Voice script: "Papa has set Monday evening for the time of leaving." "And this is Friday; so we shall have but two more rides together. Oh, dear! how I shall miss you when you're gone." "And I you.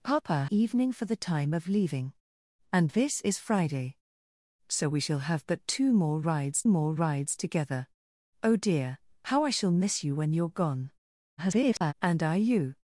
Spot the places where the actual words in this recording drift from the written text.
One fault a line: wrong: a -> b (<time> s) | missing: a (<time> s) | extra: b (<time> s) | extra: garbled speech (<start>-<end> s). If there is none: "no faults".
missing: has set Monday (0.5 s)
extra: more rides (6.7 s)
extra: garbled speech (11.4-11.9 s)